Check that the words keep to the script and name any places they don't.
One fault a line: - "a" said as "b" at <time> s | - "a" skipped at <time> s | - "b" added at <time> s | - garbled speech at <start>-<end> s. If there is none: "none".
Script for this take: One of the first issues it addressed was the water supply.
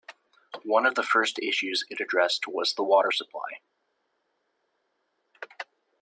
none